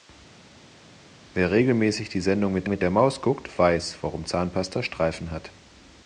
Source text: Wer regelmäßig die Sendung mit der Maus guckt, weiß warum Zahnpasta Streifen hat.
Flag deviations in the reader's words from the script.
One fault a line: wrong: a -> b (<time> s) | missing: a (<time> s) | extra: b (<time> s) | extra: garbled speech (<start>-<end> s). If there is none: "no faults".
extra: mit (2.7 s)